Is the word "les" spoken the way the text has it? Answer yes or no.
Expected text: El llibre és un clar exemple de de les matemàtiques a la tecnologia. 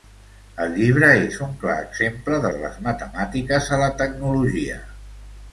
yes